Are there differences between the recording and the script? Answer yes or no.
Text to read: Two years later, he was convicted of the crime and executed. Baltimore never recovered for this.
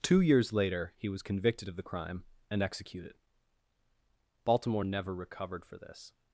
no